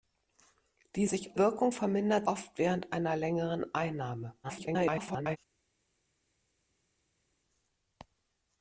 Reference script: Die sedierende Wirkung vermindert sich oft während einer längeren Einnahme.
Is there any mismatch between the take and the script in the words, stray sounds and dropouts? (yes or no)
yes